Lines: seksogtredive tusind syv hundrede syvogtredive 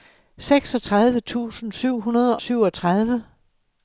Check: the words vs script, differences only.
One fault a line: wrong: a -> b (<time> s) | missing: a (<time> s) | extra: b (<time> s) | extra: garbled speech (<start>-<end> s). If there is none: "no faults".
no faults